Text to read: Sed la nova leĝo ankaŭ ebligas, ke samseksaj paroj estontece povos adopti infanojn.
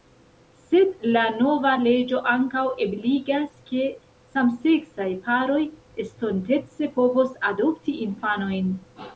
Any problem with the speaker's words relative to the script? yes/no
no